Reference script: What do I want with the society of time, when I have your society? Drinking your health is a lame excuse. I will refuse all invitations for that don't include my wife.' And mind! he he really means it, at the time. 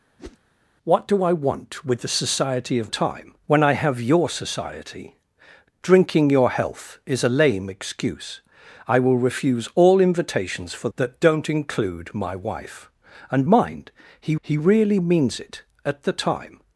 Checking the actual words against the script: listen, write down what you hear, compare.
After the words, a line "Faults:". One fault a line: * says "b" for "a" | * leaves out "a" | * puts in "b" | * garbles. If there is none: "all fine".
What do I want with the society of time, when I have your society? Drinking your health is a lame excuse. I will refuse all invitations for that don't include my wife.' And mind! he he really means it, at the time.
Faults:
all fine